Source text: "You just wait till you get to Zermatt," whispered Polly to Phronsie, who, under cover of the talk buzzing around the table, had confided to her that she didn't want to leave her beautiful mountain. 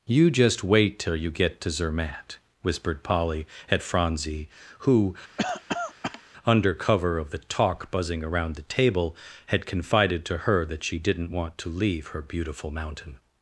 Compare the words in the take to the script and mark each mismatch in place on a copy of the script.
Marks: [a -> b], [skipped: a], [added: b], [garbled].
"You just wait till you get to Zermatt," whispered Polly [to -> at] Phronsie, who, under cover of the talk buzzing around the table, had confided to her that she didn't want to leave her beautiful mountain.